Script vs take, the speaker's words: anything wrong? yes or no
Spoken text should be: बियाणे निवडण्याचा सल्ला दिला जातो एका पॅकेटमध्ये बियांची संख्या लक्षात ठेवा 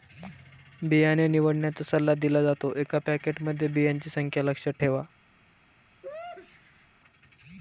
no